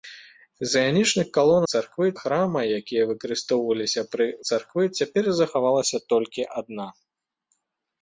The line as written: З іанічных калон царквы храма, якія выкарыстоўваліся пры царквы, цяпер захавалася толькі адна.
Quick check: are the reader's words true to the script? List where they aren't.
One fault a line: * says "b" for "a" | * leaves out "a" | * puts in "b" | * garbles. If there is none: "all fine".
all fine